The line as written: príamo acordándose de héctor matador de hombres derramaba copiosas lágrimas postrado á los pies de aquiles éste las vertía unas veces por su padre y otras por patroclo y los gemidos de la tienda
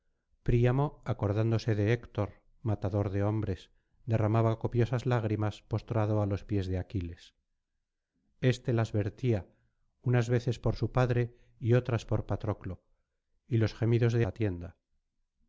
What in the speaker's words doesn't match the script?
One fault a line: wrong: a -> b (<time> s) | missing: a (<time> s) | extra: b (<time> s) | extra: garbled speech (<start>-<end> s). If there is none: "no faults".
no faults